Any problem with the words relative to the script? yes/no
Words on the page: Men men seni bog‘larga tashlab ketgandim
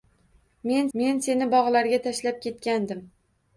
no